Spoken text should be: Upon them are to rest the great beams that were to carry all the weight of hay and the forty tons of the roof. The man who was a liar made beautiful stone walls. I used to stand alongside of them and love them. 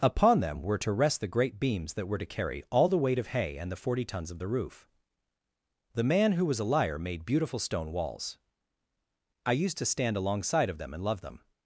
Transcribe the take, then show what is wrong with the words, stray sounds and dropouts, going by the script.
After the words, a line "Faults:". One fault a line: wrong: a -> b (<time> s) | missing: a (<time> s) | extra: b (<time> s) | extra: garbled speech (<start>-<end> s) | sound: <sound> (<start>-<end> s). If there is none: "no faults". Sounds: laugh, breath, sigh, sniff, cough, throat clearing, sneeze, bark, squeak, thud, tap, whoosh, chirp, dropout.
Upon them were to rest the great beams that were to carry all the weight of hay and the forty tons of the roof. The man who was a liar made beautiful stone walls. I used to stand alongside of them and love them.
Faults:
wrong: are -> were (0.6 s)